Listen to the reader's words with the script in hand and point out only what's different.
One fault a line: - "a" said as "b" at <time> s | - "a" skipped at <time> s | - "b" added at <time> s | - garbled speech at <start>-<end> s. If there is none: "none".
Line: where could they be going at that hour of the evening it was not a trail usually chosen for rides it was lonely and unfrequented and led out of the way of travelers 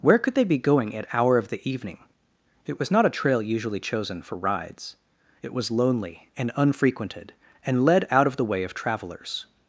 - "that" skipped at 1.1 s